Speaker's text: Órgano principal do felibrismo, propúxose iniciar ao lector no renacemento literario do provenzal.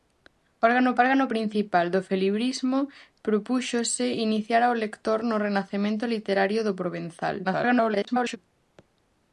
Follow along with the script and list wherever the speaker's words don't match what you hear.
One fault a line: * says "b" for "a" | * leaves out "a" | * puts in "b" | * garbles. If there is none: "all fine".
* puts in "órgano"
* garbles